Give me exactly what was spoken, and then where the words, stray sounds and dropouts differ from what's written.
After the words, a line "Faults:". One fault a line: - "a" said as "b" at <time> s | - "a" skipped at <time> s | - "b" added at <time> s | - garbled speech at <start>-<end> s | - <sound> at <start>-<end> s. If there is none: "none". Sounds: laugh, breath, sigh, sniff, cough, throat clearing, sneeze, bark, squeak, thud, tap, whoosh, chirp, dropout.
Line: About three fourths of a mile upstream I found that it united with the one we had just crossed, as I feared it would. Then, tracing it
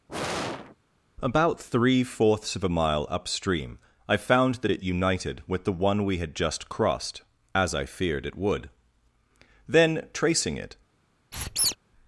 About three fourths of a mile upstream I found that it united with the one we had just crossed, as I feared it would. Then, tracing it
Faults:
- sigh at 0.1-0.8 s
- squeak at 11.3-11.8 s